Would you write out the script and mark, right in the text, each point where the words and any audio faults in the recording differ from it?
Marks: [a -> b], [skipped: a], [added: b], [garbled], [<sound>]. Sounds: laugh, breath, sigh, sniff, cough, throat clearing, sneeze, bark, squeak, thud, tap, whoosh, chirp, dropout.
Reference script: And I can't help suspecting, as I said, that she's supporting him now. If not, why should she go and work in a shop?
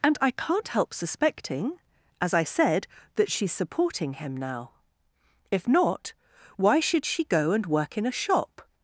And I can't help suspecting, as I said, that she's supporting him now. If not, why should she go and work in a shop?